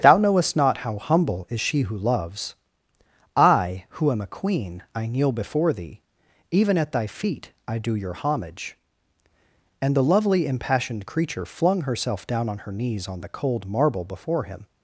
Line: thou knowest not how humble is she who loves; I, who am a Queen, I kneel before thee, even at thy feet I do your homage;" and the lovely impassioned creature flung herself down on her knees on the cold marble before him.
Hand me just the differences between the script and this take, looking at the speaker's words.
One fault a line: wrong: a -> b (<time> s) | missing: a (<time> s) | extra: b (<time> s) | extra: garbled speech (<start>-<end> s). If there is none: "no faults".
no faults